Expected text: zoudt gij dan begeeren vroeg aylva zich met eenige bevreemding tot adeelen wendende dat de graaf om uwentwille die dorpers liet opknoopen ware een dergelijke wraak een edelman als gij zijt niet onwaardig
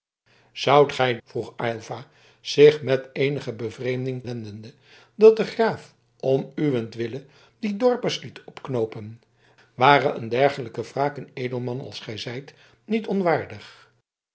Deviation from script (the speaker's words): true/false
true